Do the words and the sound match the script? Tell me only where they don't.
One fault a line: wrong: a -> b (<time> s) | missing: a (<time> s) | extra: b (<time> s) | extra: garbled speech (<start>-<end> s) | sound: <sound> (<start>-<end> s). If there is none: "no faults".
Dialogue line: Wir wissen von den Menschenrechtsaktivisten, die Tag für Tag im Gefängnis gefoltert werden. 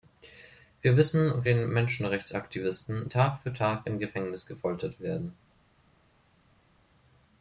missing: von (1.4 s)
missing: die (3.1 s)